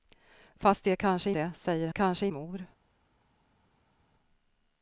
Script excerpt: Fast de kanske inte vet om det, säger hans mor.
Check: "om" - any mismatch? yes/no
yes